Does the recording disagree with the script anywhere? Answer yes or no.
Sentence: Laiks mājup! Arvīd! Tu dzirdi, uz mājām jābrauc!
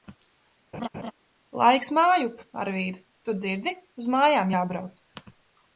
no